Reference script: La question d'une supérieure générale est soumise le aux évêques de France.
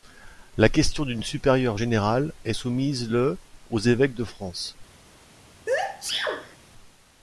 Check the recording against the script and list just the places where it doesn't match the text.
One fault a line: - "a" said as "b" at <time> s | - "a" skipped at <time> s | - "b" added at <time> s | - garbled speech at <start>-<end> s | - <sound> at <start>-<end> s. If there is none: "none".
- sneeze at 5.7-6.6 s